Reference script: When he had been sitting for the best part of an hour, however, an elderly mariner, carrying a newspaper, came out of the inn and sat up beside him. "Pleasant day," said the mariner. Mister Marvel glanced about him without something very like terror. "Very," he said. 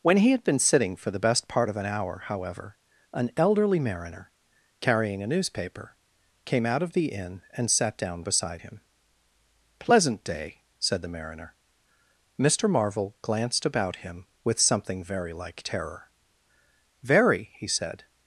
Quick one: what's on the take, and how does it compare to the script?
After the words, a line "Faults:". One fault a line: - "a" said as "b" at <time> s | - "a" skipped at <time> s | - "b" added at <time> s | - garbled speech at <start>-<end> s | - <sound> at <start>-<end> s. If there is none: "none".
When he had been sitting for the best part of an hour, however, an elderly mariner, carrying a newspaper, came out of the inn and sat down beside him. "Pleasant day," said the mariner. Mister Marvel glanced about him with something very like terror. "Very," he said.
Faults:
- "up" said as "down" at 8.0 s
- "without" said as "with" at 14.4 s